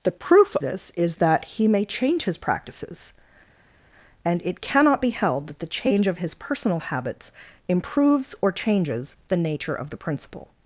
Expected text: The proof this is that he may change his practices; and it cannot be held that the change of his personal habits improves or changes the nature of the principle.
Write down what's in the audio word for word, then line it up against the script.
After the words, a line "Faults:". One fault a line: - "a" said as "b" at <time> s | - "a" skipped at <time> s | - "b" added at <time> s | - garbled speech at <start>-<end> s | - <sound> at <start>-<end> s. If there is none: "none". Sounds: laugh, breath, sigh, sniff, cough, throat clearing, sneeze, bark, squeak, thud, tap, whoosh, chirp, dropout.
The proof this is that he may change his practices; and it cannot be held that the change of his personal habits improves or changes the nature of the principle.
Faults:
none